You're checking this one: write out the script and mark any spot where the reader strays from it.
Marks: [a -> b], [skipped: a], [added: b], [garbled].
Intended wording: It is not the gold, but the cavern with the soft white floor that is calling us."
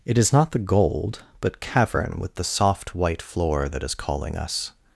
It is not the gold, but [skipped: the] cavern with the soft white floor that is calling us."